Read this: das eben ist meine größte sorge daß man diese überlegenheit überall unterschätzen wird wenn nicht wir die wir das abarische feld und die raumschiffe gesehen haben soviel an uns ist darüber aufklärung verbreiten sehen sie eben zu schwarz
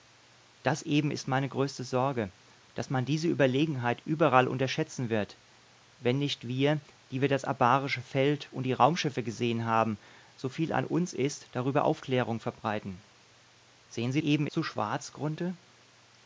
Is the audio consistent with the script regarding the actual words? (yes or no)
yes